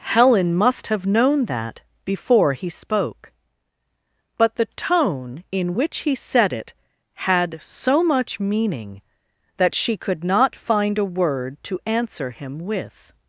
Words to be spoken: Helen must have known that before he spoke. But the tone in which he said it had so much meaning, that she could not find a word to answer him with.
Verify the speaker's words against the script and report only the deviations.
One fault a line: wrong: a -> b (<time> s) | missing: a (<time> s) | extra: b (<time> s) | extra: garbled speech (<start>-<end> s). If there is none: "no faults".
no faults